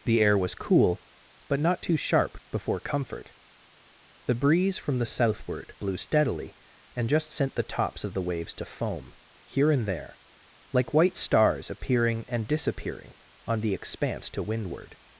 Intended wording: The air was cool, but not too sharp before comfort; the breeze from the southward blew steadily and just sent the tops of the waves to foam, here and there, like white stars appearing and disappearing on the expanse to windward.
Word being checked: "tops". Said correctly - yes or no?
yes